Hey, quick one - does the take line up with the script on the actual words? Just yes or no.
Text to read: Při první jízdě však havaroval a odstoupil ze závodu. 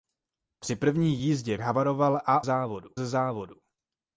no